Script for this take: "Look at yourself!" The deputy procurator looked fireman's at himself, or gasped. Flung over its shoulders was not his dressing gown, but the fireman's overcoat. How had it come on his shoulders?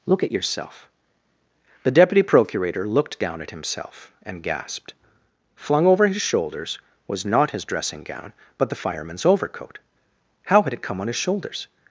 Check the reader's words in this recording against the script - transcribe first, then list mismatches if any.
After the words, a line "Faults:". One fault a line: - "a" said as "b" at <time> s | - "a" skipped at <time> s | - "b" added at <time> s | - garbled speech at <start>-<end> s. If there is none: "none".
"Look at yourself!" The deputy procurator looked down at himself, and gasped. Flung over his shoulders was not his dressing gown, but the fireman's overcoat. How had it come on his shoulders?
Faults:
- "fireman's" said as "down" at 3.2 s
- "or" said as "and" at 4.2 s
- "its" said as "his" at 6.1 s